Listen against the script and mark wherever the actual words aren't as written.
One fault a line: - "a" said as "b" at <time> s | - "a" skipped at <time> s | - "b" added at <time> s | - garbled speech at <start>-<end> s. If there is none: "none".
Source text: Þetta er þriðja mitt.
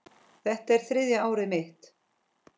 - "árið" added at 1.3 s